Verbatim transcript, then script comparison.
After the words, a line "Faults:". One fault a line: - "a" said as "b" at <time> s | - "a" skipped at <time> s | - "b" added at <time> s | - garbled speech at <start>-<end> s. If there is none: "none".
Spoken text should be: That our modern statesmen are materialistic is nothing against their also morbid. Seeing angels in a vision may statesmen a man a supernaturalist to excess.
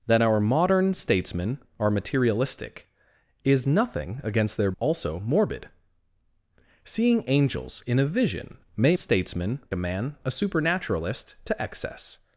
That our modern statesmen are materialistic is nothing against their also morbid. Seeing angels in a vision may statesmen a man a supernaturalist to excess.
Faults:
none